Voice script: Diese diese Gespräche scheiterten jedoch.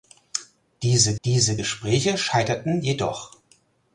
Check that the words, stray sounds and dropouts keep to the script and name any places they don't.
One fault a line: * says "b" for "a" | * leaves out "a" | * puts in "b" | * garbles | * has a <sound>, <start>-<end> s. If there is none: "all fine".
all fine